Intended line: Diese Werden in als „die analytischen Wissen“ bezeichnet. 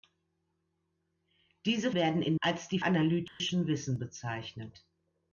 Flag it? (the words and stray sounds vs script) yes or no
yes